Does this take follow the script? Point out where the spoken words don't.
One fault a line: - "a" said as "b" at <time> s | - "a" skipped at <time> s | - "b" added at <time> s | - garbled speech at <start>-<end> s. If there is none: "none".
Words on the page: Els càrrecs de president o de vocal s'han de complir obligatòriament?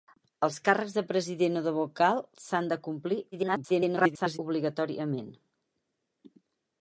- garbled speech at 3.3-4.4 s